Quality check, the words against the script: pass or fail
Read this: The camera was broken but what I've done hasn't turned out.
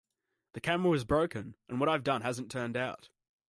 fail